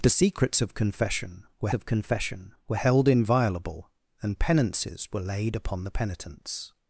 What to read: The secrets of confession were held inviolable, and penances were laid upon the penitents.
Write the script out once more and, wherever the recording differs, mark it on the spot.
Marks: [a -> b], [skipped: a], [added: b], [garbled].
The secrets of confession were [added: of confession were] held inviolable, and penances were laid upon the penitents.